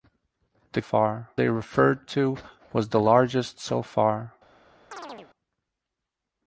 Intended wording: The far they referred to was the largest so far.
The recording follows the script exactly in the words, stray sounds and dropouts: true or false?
false